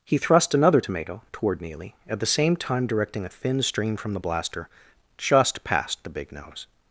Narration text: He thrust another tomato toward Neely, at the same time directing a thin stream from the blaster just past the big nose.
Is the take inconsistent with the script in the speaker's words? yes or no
no